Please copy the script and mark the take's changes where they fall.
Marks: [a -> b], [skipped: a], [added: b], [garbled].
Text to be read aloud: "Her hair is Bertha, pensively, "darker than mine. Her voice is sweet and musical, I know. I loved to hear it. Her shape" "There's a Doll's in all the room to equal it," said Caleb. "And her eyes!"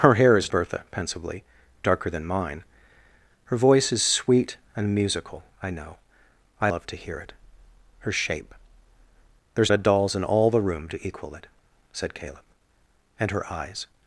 "Her hair is Bertha, pensively, "darker than mine. Her voice is sweet and musical, I know. I loved to hear it. Her shape" "There's a Doll's in all the room to equal it," said Caleb. "And her eyes!"